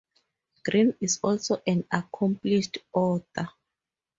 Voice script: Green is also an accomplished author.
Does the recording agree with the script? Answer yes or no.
yes